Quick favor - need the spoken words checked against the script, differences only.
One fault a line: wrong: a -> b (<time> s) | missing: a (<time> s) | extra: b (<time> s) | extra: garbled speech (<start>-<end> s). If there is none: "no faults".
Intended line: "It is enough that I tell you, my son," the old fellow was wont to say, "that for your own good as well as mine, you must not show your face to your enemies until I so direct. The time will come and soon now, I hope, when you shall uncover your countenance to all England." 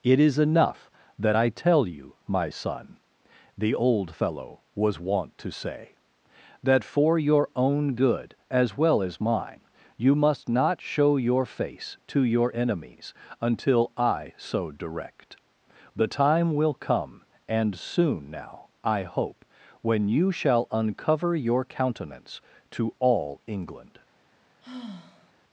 no faults